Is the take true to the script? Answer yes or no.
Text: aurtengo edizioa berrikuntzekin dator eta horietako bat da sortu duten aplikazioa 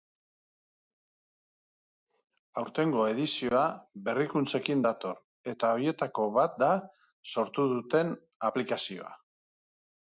yes